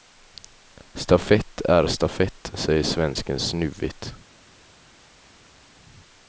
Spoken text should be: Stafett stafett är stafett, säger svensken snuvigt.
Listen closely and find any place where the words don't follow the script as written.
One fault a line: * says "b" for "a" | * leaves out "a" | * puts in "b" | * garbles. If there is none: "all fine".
* leaves out "stafett"